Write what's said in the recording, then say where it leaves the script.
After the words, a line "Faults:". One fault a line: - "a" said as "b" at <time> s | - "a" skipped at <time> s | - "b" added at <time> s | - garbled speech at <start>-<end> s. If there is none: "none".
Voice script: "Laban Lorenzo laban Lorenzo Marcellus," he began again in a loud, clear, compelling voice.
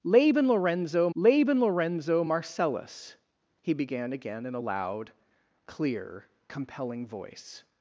"Laban Lorenzo laban Lorenzo Marcellus," he began again in a loud, clear, compelling voice.
Faults:
none